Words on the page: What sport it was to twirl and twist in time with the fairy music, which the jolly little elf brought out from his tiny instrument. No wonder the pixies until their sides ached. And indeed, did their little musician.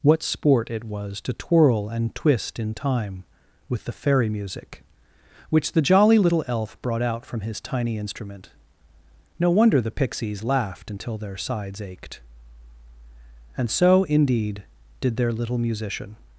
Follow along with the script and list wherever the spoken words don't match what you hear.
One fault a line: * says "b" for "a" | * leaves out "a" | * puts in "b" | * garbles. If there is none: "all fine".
* puts in "laughed"
* puts in "so"